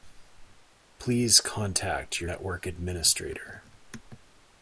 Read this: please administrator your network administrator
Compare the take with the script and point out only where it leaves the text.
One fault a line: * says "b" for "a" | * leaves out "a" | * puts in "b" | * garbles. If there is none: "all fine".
* says "contact" for "administrator"